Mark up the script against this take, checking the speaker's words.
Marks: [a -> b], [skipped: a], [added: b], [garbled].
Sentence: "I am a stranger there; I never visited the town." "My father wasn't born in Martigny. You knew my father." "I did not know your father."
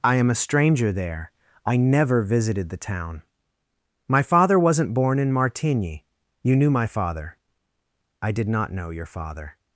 "I am a stranger there; I never visited the town." "My father wasn't born in Martigny. You knew my father." "I did not know your father."